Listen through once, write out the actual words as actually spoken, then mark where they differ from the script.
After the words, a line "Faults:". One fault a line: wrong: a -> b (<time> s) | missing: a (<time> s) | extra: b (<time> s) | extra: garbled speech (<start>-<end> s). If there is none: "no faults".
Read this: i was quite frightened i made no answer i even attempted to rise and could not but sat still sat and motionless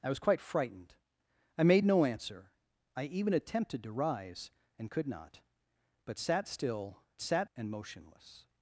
i was quite frightened i made no answer i even attempted to rise and could not but sat still sat and motionless
Faults:
no faults